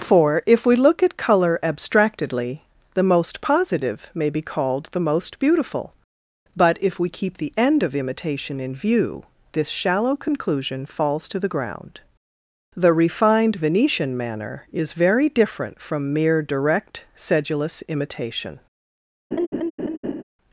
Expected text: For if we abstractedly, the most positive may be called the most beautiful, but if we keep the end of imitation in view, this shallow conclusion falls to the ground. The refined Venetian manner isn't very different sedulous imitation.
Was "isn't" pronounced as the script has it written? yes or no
no